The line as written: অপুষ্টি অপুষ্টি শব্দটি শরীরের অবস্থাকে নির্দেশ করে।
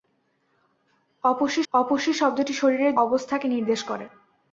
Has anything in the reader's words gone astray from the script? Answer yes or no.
no